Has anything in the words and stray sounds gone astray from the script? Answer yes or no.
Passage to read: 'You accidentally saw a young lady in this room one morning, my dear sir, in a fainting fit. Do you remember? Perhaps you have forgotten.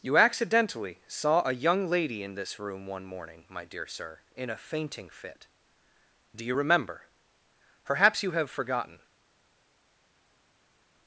no